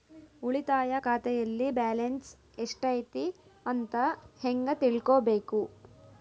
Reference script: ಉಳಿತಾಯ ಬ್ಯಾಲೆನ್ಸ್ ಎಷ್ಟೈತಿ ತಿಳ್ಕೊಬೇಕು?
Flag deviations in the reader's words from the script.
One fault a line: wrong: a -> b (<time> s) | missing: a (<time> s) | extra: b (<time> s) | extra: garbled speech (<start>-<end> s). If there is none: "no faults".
extra: ಖಾತೆಯಲ್ಲಿ (1.0 s)
extra: ಅಂತ ಹೆಂಗ (3.7 s)